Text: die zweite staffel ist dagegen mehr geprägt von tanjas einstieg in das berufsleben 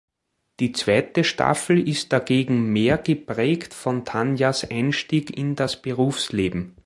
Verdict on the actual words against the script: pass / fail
pass